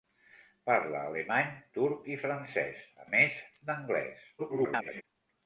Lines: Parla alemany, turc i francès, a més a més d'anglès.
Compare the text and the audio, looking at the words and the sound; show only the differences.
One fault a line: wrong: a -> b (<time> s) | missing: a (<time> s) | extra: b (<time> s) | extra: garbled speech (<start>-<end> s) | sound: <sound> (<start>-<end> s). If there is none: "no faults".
missing: més (3.1 s)
extra: garbled speech (4.4-5.0 s)